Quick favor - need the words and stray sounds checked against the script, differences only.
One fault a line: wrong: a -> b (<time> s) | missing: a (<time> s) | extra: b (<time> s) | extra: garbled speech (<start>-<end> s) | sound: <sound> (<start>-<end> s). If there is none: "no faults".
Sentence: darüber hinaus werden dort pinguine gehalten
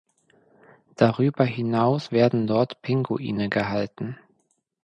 no faults